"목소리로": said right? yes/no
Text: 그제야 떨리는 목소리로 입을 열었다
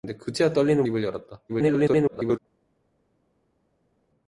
no